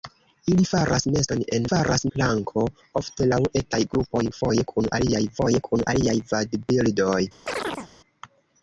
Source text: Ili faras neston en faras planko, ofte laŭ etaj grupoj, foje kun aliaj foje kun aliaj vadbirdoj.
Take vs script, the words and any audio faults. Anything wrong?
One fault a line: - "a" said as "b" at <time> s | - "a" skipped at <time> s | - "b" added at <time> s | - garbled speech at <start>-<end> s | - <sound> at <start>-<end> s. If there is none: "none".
- chirp at 7.5-7.9 s